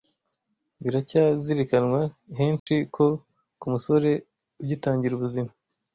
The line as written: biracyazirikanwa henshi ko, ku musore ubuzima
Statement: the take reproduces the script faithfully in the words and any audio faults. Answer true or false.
false